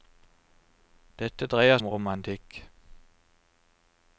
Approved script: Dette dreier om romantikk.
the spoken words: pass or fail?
pass